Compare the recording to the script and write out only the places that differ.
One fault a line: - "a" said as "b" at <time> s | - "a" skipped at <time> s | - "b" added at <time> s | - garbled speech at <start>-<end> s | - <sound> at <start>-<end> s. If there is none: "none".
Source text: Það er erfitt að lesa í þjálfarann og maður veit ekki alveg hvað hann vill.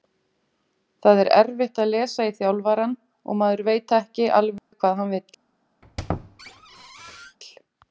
- dropout at 4.6-4.7 s
- squeak at 5.8-7.4 s